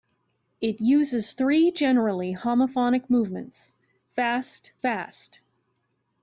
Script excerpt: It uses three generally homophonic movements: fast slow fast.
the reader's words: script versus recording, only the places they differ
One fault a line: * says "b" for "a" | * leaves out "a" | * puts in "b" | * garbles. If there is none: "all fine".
* leaves out "slow"